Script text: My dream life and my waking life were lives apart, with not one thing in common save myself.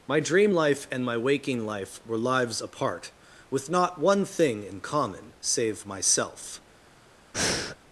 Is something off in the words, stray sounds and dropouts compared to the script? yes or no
yes